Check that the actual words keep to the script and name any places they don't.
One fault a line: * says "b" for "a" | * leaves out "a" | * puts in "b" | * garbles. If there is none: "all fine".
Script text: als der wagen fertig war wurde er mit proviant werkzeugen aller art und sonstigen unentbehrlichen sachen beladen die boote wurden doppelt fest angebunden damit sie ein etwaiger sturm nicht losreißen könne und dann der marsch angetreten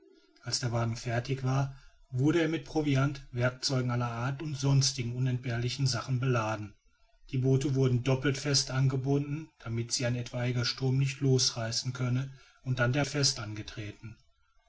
* says "fest" for "marsch"